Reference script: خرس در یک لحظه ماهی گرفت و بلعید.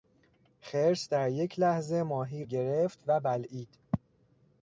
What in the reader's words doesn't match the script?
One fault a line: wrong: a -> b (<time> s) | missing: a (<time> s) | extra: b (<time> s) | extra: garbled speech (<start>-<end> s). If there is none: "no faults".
no faults